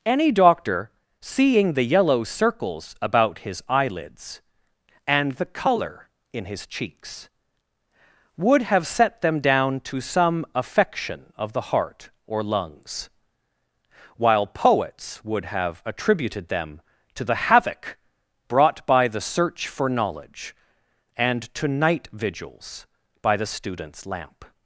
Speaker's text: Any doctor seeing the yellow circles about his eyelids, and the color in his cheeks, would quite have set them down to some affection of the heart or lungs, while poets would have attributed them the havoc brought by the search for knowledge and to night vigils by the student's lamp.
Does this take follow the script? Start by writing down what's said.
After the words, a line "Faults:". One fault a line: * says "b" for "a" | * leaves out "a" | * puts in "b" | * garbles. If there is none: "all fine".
Any doctor seeing the yellow circles about his eyelids, and the color in his cheeks, would have set them down to some affection of the heart or lungs, while poets would have attributed them to the havoc brought by the search for knowledge and to night vigils by the student's lamp.
Faults:
* leaves out "quite"
* puts in "to"